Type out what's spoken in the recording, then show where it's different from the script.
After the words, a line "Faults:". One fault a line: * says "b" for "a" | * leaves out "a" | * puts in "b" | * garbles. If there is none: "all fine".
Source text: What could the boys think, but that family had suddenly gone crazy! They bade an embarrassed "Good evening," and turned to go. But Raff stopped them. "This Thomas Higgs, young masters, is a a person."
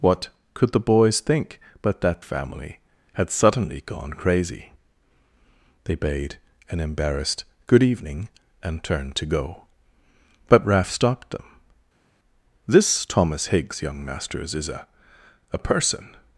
What could the boys think, but that family had suddenly gone crazy! They bade an embarrassed "Good evening," and turned to go. But Raff stopped them. "This Thomas Higgs, young masters, is a a person."
Faults:
all fine